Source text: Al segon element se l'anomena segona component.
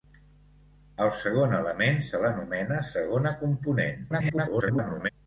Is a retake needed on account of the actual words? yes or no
yes